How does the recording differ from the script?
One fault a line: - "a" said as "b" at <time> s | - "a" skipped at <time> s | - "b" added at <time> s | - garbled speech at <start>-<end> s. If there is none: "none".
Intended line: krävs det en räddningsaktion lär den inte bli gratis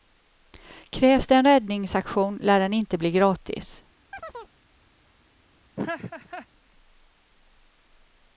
none